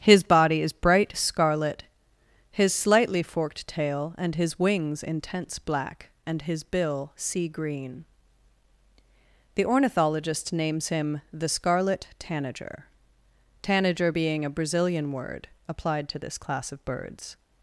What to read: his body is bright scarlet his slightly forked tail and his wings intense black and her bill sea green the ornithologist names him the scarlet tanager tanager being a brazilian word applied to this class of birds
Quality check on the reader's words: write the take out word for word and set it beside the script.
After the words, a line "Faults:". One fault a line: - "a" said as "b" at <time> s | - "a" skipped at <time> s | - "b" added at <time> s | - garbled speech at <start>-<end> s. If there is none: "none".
his body is bright scarlet his slightly forked tail and his wings intense black and his bill sea green the ornithologist names him the scarlet tanager tanager being a brazilian word applied to this class of birds
Faults:
- "her" said as "his" at 6.4 s